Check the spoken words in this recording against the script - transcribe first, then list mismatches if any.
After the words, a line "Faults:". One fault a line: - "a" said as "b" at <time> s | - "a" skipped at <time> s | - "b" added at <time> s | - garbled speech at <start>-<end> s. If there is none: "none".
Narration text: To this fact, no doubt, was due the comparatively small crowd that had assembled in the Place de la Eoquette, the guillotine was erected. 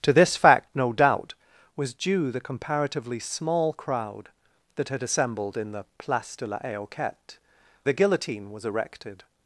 To this fact, no doubt, was due the comparatively small crowd that had assembled in the Place de la Eoquette, the guillotine was erected.
Faults:
none